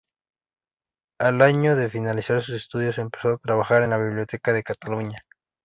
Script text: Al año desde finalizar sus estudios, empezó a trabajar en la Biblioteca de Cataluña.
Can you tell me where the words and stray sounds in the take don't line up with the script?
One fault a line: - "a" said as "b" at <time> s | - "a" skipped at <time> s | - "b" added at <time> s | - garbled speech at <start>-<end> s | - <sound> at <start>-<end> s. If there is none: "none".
- "desde" said as "de" at 1.8 s